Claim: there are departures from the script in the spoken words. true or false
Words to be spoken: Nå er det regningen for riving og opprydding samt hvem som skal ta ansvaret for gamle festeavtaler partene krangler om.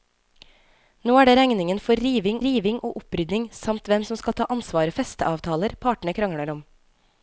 true